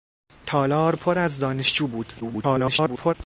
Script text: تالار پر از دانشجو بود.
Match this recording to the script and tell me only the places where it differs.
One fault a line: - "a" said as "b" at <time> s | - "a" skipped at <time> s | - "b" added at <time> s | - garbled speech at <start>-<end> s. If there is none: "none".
- garbled speech at 2.2-3.1 s